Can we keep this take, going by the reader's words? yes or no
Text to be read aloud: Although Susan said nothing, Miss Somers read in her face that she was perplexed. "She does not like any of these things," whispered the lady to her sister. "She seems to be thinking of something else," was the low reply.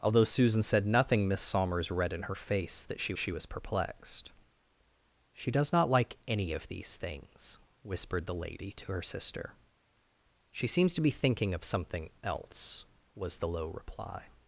no